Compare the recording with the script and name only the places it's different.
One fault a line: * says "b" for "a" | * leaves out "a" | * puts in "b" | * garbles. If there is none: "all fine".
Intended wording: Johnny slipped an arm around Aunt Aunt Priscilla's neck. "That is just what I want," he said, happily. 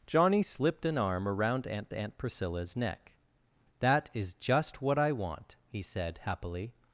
all fine